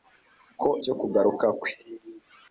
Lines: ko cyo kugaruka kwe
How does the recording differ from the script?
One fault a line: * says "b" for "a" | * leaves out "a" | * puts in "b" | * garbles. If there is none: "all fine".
all fine